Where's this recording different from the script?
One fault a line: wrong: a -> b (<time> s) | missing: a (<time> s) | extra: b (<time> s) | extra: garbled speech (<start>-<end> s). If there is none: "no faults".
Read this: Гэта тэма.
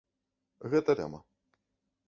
no faults